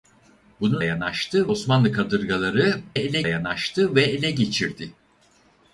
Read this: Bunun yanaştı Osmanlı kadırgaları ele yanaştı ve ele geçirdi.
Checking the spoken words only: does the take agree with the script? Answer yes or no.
yes